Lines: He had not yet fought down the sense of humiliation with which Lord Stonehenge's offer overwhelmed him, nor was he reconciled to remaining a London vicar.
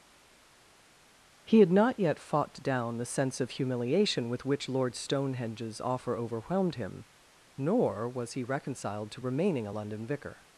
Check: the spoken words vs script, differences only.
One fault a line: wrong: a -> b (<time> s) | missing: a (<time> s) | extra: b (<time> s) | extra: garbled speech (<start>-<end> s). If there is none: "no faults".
no faults